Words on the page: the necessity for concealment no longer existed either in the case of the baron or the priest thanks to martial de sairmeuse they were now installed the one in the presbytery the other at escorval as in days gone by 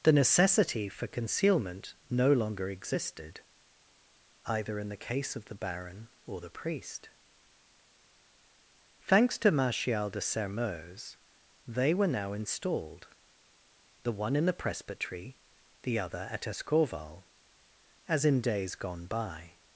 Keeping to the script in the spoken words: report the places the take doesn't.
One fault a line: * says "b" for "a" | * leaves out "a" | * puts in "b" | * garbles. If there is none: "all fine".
all fine